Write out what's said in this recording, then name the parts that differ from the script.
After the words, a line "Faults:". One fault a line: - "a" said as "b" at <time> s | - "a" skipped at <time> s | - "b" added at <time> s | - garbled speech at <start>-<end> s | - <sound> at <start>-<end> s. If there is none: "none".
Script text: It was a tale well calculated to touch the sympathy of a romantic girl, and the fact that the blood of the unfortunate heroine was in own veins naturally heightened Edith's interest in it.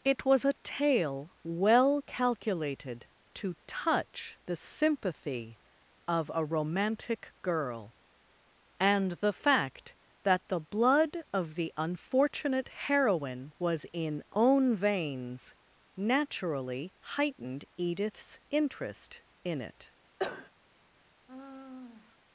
It was a tale well calculated to touch the sympathy of a romantic girl, and the fact that the blood of the unfortunate heroine was in own veins naturally heightened Edith's interest in it.
Faults:
- cough at 20.2-20.5 s
- sigh at 21.3-22.2 s